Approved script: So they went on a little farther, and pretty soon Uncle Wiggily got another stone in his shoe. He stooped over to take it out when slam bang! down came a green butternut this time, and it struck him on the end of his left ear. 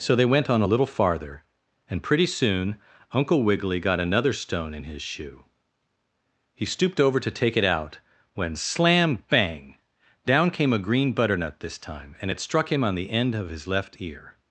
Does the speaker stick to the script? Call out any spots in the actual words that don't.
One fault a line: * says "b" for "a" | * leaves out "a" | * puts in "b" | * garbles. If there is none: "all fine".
all fine